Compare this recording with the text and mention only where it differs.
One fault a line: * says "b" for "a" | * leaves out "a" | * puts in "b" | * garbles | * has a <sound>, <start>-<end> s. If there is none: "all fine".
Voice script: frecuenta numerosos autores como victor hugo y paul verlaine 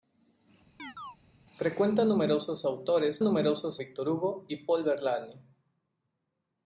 * has a chirp, 0.8-1.2 s
* says "numerosos" for "como"